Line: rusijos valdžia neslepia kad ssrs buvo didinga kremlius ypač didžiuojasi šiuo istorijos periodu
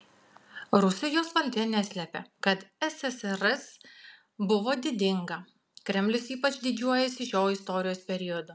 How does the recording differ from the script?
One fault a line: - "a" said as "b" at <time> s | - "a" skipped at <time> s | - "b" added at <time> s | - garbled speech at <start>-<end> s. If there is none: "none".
none